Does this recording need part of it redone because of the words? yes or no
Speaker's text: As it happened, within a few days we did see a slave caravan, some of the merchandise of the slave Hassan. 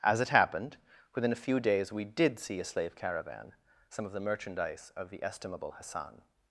yes